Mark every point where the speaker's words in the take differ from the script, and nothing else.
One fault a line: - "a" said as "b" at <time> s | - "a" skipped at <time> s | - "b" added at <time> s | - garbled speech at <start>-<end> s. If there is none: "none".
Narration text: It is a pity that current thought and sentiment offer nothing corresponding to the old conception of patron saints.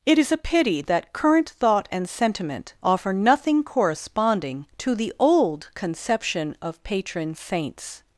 none